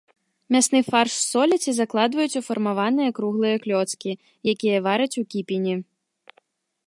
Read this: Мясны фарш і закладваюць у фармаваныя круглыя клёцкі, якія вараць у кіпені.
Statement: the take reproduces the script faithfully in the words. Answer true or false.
false